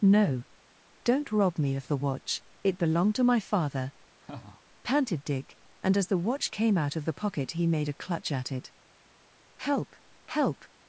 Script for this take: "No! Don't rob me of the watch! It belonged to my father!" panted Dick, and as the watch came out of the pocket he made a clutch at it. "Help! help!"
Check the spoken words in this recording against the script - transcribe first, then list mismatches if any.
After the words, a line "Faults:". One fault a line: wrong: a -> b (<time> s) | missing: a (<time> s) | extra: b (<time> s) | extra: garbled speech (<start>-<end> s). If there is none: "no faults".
"No! Don't rob me of the watch! It belonged to my father!" panted Dick, and as the watch came out of the pocket he made a clutch at it. "Help! help!"
Faults:
no faults